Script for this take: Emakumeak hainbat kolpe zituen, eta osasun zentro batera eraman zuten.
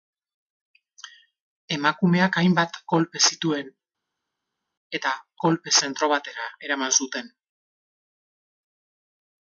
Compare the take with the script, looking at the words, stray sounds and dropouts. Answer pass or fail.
fail